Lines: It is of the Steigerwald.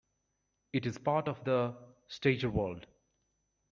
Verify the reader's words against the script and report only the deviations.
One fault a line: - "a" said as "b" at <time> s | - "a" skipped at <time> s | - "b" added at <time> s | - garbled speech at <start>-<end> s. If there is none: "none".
- "part" added at 1.0 s